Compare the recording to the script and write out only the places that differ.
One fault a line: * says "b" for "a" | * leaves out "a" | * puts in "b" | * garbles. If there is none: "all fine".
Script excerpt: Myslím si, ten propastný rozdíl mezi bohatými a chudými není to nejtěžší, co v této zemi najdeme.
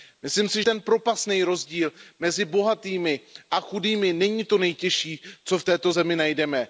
all fine